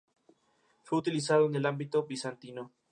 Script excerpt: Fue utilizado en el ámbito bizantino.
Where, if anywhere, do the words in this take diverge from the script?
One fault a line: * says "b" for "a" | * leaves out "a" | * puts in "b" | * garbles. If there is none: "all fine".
all fine